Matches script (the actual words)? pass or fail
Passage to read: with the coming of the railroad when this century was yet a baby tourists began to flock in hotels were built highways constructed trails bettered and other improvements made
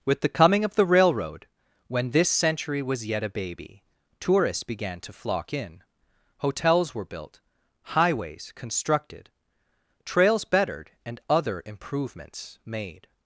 pass